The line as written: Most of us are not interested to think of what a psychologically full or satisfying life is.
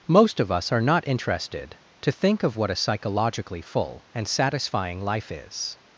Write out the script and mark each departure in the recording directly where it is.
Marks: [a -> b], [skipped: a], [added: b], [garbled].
Most of us are not interested to think of what a psychologically full [or -> and] satisfying life is.